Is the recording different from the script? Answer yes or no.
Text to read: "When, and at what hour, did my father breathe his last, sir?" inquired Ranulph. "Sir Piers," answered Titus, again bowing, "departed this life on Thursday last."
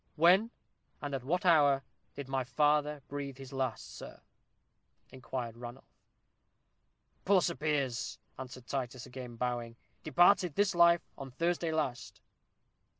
yes